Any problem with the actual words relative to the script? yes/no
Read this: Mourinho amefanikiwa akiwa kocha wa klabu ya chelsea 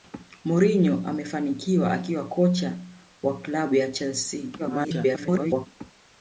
yes